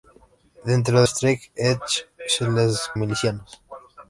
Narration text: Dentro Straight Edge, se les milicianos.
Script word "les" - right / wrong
right